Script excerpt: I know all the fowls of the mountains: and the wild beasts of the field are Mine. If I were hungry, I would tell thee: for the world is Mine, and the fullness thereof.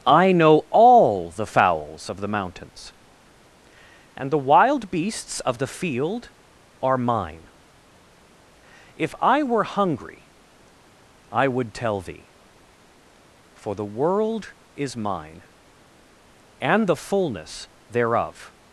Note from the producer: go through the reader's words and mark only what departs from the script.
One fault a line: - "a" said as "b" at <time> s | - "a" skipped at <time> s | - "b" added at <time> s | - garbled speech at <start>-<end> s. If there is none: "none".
none